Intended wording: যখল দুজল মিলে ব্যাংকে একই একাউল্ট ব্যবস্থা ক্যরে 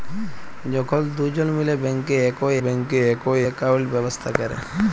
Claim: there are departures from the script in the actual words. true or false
true